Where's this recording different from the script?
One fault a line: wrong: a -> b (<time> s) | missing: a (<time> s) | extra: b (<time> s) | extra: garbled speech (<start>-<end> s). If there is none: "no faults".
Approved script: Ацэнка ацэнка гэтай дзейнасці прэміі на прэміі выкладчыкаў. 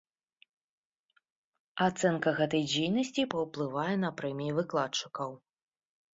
missing: ацэнка (2.3 s)
wrong: прэміі -> паўплывае (3.4 s)